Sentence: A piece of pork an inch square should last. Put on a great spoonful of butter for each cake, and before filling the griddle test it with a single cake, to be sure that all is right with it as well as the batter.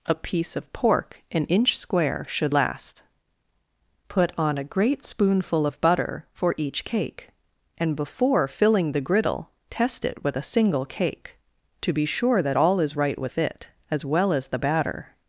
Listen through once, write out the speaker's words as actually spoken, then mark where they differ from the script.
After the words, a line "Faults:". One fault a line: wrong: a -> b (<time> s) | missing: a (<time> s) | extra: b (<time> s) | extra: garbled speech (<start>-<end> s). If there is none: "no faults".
A piece of pork an inch square should last. Put on a great spoonful of butter for each cake, and before filling the griddle test it with a single cake, to be sure that all is right with it as well as the batter.
Faults:
no faults